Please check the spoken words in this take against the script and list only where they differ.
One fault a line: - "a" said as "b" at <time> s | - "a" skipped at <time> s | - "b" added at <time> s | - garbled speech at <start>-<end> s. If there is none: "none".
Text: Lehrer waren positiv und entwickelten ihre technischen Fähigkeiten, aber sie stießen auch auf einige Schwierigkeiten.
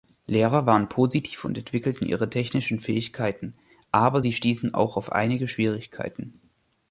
none